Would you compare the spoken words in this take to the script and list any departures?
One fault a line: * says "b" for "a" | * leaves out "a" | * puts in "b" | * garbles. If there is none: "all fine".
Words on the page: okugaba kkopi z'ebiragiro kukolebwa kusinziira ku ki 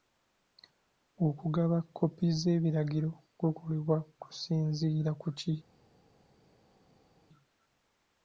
all fine